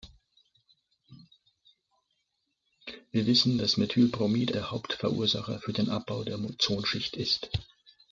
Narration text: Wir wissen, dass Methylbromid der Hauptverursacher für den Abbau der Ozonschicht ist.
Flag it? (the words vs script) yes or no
no